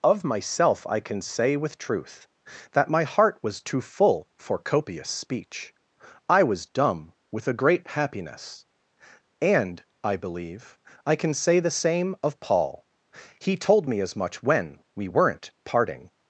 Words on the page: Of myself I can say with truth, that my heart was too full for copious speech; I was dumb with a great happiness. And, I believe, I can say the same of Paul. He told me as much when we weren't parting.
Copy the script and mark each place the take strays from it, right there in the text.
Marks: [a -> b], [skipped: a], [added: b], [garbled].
Of myself I can say with truth, that my heart was too full for copious speech; I was dumb with a great happiness. And, I believe, I can say the same of Paul. He told me as much when we weren't parting.